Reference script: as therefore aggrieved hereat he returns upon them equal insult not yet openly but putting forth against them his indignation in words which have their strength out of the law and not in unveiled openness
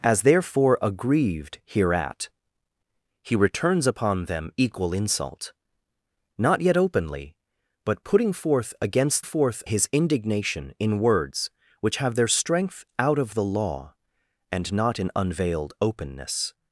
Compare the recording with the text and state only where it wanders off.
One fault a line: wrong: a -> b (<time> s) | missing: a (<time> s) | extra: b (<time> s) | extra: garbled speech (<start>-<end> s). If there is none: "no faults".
wrong: them -> forth (9.2 s)